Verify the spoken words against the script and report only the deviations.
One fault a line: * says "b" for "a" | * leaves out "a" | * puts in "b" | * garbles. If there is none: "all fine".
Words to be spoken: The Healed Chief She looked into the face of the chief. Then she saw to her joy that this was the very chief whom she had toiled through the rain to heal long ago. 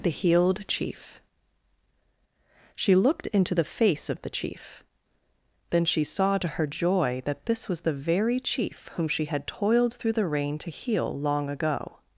all fine